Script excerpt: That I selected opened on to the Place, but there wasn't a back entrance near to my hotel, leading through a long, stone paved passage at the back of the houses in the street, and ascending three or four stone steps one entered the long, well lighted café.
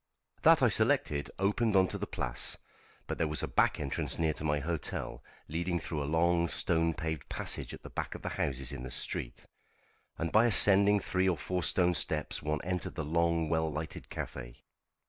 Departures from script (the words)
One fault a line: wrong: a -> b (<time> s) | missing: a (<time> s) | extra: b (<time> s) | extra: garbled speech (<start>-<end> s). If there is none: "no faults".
wrong: wasn't -> was (3.3 s)
extra: by (10.3 s)